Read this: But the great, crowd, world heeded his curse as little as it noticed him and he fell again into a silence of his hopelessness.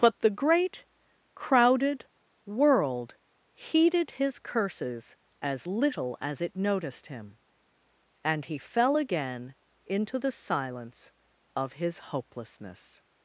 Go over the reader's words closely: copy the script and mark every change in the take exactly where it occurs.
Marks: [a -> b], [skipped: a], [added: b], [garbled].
But the great, [crowd, -> crowded] world heeded his [curse -> curses] as little as it noticed him and he fell again into [a -> the] silence of his hopelessness.